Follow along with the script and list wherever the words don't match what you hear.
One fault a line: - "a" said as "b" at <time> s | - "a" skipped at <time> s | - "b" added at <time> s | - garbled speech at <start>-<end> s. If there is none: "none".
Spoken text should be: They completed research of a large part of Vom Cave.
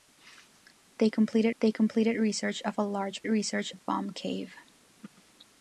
- "they completed" added at 1.6 s
- "part" said as "research" at 3.3 s